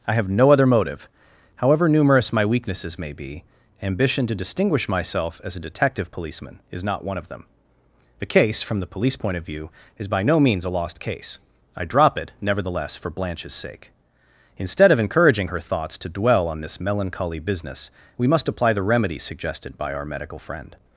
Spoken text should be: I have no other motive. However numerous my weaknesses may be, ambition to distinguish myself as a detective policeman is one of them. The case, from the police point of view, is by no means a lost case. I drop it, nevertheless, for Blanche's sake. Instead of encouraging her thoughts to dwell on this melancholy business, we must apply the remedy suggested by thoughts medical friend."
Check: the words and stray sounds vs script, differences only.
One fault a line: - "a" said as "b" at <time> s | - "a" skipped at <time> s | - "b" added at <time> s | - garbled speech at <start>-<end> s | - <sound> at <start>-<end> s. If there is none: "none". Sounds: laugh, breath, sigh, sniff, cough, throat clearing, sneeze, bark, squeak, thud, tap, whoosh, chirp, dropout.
- "not" added at 6.8 s
- "thoughts" said as "our" at 19.9 s